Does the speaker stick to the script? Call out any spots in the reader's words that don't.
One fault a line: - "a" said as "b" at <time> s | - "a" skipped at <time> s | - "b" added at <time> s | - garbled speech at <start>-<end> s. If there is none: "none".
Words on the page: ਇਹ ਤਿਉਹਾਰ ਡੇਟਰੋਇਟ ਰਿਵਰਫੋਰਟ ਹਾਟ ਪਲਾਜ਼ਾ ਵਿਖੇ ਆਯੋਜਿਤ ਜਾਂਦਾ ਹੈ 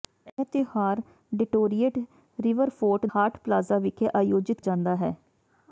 none